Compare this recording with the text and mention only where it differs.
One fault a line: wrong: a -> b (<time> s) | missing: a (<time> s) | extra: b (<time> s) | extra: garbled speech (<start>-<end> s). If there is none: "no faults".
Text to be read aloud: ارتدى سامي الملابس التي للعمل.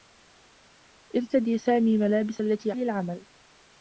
no faults